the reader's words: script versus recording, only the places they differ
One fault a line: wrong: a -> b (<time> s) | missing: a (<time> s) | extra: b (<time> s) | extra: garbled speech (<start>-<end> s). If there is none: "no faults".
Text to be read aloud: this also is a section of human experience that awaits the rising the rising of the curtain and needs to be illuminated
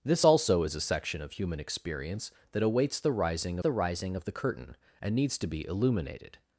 no faults